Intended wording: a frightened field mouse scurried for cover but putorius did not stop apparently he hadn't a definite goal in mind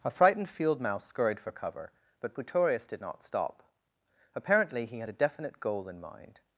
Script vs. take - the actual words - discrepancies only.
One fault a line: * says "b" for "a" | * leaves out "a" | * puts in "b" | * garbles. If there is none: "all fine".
* says "had" for "hadn't"